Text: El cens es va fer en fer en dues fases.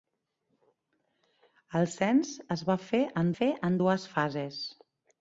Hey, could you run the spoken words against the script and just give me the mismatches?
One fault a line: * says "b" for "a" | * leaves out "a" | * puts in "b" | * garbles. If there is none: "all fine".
all fine